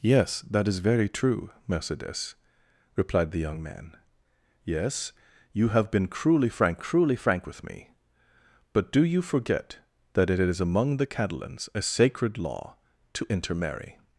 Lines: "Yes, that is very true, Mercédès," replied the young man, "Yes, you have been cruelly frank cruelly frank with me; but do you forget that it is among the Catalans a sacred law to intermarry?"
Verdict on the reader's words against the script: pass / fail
pass